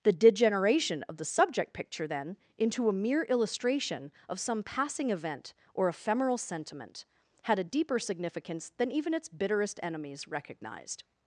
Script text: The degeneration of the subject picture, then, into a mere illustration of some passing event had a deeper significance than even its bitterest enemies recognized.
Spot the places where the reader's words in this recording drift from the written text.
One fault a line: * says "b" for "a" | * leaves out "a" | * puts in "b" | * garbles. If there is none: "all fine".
* puts in "or ephemeral sentiment"